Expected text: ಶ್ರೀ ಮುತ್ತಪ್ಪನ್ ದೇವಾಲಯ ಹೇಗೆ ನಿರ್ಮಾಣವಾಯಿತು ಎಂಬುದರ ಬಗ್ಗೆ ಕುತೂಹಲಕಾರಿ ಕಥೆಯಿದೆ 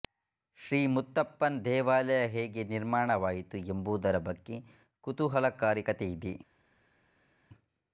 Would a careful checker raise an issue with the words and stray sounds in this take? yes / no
no